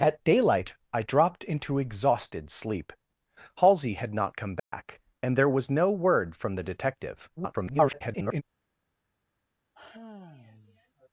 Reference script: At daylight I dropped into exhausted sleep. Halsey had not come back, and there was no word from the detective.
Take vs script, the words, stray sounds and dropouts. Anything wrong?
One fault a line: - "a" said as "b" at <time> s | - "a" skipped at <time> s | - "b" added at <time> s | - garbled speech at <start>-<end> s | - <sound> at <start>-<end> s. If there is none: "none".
- dropout at 4.6-4.7 s
- garbled speech at 7.4-8.4 s
- sigh at 9.7-11.1 s